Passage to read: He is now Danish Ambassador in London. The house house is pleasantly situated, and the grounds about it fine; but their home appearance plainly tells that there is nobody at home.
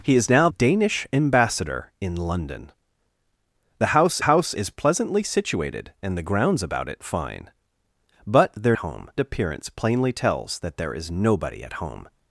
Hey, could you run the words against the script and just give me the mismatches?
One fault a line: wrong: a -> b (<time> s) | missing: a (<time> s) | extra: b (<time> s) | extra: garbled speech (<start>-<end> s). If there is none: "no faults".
no faults